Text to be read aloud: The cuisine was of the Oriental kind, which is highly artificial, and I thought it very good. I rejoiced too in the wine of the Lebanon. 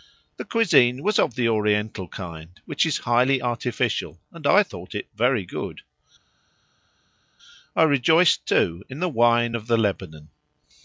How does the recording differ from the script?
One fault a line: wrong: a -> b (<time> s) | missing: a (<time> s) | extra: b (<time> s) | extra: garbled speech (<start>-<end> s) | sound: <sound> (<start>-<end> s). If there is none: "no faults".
no faults